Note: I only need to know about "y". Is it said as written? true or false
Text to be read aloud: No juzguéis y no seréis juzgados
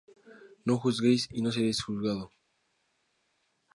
true